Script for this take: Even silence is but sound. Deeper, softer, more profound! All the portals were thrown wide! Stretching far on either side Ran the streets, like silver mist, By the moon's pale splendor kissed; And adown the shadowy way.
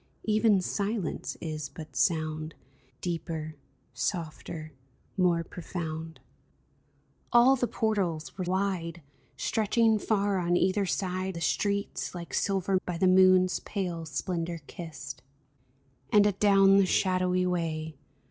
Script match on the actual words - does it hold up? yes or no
no